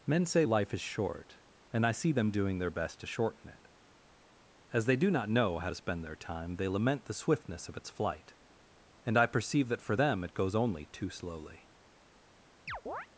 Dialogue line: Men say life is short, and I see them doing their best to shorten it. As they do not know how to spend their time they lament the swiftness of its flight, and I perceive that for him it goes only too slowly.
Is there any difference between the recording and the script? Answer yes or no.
yes